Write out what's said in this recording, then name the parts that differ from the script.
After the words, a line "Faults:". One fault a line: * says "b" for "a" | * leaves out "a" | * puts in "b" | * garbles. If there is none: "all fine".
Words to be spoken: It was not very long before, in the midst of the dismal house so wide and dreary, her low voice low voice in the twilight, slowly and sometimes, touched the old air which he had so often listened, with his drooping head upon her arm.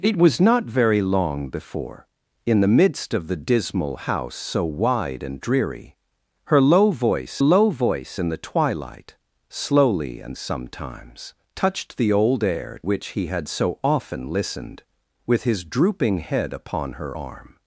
It was not very long before, in the midst of the dismal house so wide and dreary, her low voice low voice in the twilight, slowly and sometimes, touched the old air which he had so often listened, with his drooping head upon her arm.
Faults:
all fine